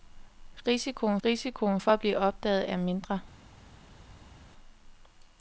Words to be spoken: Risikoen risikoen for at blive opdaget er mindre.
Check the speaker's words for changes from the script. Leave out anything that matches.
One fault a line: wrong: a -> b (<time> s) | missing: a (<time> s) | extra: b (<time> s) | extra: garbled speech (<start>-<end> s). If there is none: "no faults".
no faults